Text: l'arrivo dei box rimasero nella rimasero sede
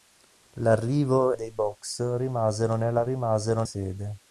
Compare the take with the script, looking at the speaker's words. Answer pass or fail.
pass